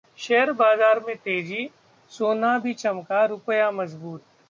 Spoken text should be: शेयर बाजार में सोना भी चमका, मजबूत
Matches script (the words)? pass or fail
fail